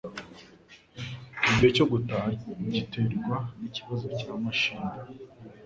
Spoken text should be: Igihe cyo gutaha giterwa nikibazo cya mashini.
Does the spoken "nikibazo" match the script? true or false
true